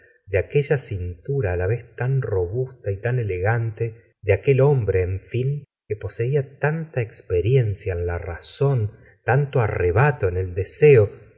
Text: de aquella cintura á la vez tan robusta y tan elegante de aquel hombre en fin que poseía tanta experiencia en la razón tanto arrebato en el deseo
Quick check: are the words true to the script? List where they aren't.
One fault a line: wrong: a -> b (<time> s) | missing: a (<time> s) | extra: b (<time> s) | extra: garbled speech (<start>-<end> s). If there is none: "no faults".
no faults